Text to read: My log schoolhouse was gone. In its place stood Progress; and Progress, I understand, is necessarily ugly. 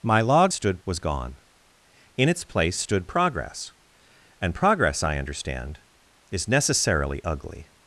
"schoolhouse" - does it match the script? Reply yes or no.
no